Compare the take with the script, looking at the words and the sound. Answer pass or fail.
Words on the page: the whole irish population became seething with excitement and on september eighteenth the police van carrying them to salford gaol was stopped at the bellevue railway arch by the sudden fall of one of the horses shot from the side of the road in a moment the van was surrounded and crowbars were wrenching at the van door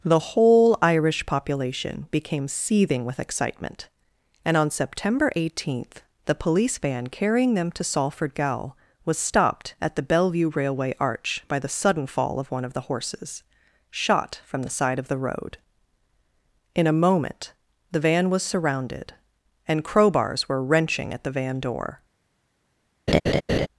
fail